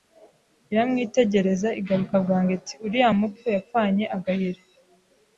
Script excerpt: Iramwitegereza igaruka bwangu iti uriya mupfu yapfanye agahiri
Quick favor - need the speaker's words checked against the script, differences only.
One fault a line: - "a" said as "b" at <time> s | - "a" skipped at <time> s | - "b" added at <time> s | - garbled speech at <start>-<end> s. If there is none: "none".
none